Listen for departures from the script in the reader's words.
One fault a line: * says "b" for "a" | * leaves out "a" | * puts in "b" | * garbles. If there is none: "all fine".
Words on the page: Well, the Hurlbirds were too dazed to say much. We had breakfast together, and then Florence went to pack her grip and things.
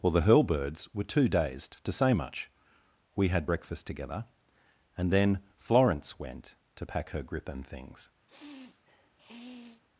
all fine